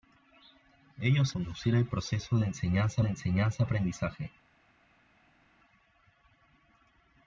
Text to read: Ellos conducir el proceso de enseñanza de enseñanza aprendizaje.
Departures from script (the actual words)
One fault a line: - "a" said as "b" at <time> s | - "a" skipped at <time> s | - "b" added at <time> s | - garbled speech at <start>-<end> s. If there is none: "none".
none